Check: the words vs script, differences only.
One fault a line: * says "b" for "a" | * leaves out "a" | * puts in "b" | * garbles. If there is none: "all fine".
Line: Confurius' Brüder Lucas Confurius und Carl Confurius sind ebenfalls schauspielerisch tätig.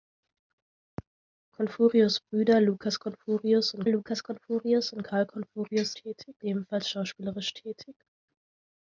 * puts in "Lucas Confurius und"
* says "tätig" for "sind"